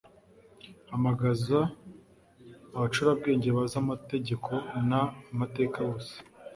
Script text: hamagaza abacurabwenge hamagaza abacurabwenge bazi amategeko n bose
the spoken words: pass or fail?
fail